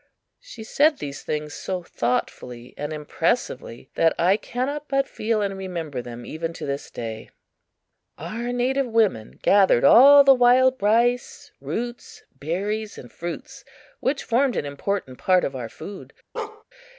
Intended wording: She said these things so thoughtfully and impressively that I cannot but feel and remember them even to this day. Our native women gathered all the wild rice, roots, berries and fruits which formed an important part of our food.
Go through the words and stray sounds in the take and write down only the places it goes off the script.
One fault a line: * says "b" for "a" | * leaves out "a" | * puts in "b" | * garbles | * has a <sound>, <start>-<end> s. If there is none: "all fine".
* has a bark, 16.3-16.6 s